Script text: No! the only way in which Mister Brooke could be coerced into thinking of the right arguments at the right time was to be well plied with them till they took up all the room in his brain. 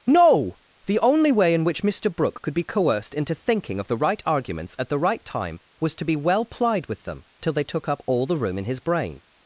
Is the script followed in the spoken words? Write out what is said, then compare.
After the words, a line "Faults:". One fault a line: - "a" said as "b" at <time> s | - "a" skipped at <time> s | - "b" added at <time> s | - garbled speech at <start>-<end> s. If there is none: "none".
No! the only way in which Mister Brooke could be coerced into thinking of the right arguments at the right time was to be well plied with them till they took up all the room in his brain.
Faults:
none